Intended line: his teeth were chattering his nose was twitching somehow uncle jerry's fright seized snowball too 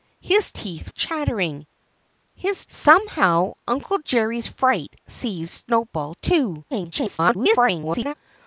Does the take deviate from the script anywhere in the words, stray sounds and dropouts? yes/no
yes